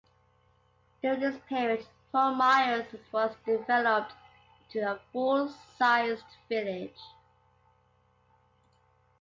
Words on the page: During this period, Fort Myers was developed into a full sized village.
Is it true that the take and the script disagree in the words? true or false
false